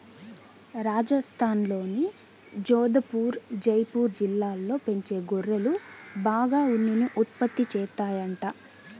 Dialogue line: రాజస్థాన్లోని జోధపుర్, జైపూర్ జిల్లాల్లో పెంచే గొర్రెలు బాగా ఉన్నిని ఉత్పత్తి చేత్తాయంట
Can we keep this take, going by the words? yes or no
yes